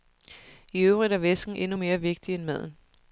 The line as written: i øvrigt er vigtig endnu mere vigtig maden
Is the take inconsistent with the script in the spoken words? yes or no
yes